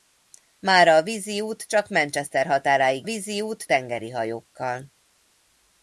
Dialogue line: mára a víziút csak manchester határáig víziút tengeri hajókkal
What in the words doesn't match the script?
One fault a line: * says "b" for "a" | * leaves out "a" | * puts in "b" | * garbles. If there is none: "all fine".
all fine